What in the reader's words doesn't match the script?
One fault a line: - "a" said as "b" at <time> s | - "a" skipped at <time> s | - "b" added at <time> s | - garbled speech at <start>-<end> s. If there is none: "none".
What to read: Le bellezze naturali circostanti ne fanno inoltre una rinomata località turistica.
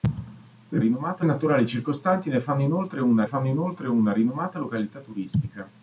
- "bellezze" said as "rinomata" at 0.8 s
- "fanno inoltre una" added at 3.2 s